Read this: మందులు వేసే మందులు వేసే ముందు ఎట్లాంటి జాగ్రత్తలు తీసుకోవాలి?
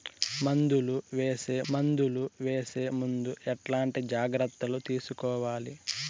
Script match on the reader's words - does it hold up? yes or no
yes